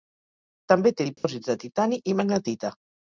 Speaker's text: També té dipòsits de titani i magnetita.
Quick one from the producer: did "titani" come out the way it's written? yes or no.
yes